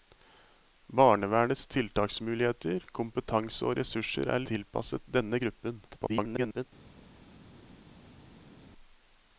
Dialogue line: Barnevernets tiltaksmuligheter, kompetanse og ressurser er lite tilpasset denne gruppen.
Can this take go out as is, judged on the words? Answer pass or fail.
fail